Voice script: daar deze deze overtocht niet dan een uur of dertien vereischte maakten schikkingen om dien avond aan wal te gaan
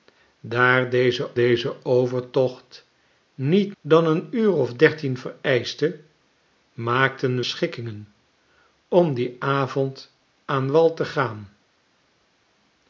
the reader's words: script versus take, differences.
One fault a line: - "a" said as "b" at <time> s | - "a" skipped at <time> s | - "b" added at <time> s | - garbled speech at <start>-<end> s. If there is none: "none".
none